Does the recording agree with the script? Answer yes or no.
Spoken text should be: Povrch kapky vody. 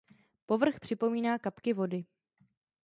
no